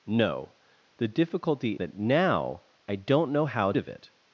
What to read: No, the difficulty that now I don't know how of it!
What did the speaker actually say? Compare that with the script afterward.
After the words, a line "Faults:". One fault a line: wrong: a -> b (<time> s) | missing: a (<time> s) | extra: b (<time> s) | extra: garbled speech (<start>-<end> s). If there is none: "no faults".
No, the difficulty that now I don't know how of it!
Faults:
no faults